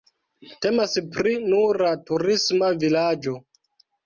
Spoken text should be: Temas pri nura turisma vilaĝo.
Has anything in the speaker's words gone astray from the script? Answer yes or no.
no